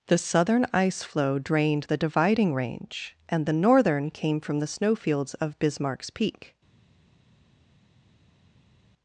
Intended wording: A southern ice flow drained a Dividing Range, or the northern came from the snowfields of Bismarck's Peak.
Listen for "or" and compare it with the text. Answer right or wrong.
wrong